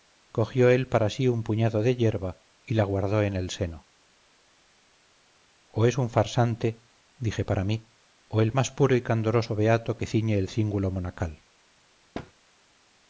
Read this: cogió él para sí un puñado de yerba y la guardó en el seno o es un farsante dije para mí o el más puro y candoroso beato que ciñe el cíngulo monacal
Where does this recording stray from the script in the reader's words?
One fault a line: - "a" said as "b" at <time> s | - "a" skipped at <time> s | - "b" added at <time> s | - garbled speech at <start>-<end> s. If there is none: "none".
none